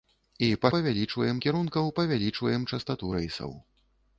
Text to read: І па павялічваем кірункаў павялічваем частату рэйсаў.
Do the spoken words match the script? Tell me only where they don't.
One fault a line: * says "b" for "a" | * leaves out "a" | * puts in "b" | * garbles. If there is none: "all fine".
all fine